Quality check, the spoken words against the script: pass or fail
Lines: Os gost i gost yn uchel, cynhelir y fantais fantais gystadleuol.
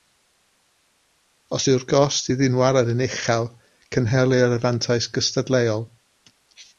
fail